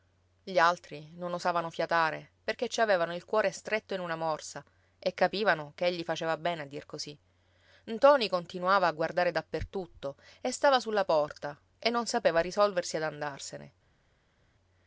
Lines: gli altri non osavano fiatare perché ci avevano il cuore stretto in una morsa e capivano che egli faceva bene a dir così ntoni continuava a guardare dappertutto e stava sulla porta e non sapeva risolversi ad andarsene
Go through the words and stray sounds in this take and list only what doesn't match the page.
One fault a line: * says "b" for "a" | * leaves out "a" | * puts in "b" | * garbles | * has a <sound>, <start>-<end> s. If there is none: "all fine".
all fine